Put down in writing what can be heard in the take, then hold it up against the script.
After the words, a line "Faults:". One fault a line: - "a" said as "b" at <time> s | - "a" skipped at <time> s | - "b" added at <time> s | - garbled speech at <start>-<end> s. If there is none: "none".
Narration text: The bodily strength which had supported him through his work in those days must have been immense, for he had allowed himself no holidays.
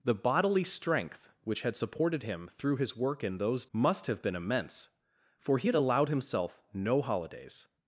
The bodily strength which had supported him through his work in those must have been immense, for he had allowed himself no holidays.
Faults:
- "days" skipped at 3.7 s